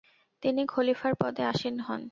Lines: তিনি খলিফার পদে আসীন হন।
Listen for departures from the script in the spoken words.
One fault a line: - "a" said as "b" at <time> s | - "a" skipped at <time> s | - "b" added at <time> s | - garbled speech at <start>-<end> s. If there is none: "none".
none